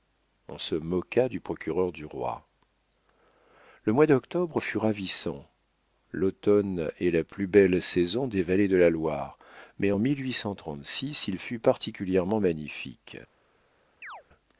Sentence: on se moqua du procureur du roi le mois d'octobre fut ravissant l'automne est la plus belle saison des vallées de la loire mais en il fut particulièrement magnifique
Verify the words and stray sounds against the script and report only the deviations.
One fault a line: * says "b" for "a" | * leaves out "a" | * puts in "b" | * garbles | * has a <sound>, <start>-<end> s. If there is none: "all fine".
* has a chirp, 14.0-14.2 s